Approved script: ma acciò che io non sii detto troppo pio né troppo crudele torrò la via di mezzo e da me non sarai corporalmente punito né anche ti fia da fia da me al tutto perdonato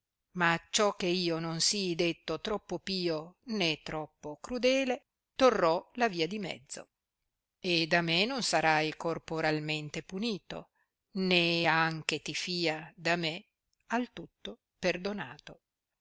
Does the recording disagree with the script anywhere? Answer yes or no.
yes